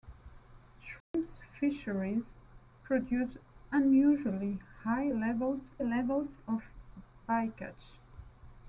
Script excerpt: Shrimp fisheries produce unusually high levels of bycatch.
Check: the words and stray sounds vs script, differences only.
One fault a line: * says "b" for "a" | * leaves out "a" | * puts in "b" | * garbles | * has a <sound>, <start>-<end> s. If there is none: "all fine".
* has a dropout, 1.0-1.1 s
* puts in "levels"